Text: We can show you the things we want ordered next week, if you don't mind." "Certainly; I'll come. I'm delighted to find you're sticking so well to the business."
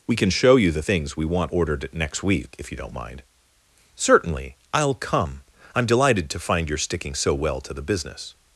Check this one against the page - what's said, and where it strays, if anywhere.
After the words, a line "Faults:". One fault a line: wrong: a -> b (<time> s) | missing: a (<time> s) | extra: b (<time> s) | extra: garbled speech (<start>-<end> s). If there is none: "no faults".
We can show you the things we want ordered next week, if you don't mind." "Certainly; I'll come. I'm delighted to find you're sticking so well to the business."
Faults:
no faults